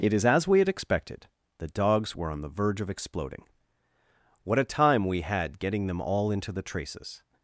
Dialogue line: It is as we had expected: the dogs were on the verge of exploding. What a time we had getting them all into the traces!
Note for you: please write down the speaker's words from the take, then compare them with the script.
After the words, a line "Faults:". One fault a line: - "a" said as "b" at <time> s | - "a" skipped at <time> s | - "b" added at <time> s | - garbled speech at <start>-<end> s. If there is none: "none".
It is as we had expected: the dogs were on the verge of exploding. What a time we had getting them all into the traces!
Faults:
none